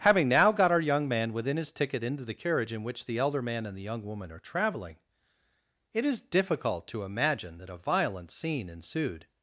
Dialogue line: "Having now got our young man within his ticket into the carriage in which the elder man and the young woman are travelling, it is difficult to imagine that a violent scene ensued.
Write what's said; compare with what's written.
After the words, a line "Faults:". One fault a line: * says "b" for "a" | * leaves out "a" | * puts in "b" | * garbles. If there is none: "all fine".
"Having now got our young man within his ticket into the carriage in which the elder man and the young woman are travelling, it is difficult to imagine that a violent scene ensued.
Faults:
all fine